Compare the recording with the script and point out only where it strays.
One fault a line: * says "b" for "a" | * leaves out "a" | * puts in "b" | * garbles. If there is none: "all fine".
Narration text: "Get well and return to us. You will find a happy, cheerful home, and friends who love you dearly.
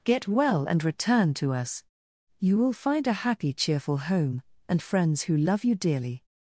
all fine